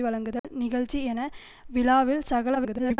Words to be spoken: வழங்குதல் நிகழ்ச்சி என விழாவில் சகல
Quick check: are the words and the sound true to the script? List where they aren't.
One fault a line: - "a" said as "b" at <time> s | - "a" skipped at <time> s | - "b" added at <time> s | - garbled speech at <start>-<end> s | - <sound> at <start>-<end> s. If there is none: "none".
- dropout at 0.4-0.4 s
- garbled speech at 2.5-3.0 s